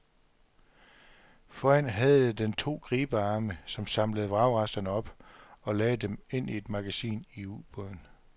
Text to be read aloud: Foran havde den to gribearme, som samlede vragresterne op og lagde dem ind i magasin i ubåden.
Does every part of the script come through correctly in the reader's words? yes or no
no